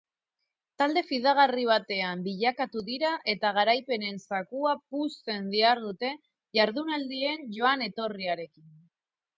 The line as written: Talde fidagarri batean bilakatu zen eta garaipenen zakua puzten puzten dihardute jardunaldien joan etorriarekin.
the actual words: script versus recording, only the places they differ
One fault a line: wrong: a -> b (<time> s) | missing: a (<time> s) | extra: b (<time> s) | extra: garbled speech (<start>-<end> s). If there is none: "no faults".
wrong: zen -> dira (2.9 s)
missing: puzten (5.5 s)